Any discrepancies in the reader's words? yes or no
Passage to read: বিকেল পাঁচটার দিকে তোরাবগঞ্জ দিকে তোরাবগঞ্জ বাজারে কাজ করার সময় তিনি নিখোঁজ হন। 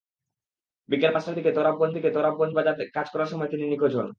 no